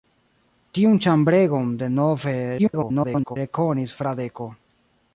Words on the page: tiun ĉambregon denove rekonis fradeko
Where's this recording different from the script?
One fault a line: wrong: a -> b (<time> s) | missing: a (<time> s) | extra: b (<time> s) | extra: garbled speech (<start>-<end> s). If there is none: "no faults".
extra: garbled speech (2.6-3.4 s)